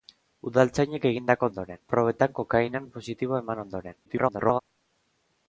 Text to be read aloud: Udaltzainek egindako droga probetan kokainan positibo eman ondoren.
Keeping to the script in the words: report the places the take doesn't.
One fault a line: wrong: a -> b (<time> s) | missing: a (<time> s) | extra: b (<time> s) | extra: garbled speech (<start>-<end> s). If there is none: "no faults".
wrong: droga -> ondoren (1.5 s)
extra: garbled speech (4.0-4.6 s)